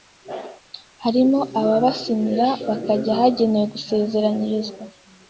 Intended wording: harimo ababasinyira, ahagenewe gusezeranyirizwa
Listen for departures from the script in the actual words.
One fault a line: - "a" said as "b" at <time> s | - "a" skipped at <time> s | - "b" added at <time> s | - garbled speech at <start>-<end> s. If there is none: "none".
- "bakajya" added at 2.7 s